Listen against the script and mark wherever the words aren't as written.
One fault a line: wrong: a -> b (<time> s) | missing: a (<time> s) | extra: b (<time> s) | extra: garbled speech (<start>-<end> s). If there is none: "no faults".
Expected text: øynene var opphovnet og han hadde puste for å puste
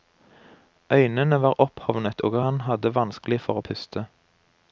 wrong: puste -> vanskelig (3.0 s)